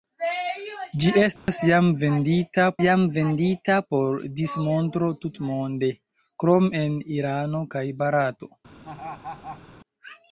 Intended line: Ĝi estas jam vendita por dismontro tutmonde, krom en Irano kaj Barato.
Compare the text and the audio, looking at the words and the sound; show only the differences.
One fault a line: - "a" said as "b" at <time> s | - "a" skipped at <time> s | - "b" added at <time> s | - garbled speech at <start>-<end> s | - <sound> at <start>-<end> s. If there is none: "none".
- dropout at 1.4-1.5 s
- "jam vendita" added at 2.9 s
- laugh at 8.8-9.6 s